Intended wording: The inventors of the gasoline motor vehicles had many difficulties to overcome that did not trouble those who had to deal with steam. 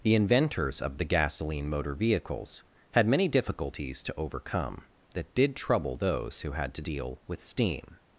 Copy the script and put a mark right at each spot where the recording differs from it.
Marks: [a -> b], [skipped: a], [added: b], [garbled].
The inventors of the gasoline motor vehicles had many difficulties to overcome that did [skipped: not] trouble those who had to deal with steam.